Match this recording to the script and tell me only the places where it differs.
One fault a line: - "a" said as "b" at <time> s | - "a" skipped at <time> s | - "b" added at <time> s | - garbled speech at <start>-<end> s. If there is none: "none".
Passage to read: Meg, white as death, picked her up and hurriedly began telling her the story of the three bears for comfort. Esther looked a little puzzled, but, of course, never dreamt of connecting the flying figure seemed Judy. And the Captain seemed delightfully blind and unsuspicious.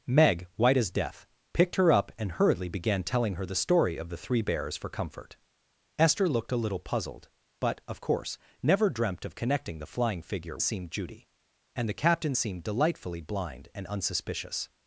none